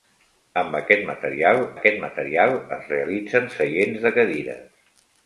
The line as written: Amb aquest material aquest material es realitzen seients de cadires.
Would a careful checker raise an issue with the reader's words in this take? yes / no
no